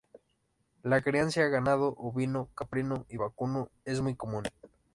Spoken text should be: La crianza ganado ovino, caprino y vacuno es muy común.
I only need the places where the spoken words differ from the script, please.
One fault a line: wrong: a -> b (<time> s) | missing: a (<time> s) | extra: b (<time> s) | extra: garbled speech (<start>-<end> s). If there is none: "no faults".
no faults